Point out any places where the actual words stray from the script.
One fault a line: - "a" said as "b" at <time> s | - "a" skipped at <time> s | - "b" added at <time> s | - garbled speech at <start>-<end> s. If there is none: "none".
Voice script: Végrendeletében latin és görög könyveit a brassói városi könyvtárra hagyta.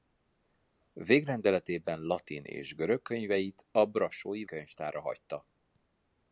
- "városi" skipped at 4.4 s